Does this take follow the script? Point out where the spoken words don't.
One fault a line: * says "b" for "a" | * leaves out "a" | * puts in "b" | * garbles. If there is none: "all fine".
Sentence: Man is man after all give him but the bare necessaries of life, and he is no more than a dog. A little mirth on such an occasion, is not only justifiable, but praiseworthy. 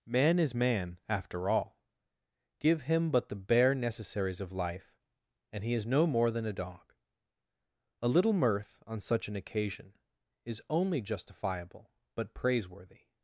* leaves out "not"